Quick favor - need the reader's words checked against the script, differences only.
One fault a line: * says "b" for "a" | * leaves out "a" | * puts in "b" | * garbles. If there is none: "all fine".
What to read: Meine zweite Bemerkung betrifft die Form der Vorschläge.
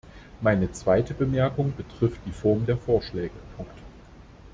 all fine